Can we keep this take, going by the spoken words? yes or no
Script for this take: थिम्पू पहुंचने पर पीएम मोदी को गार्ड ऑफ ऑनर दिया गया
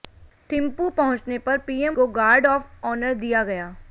no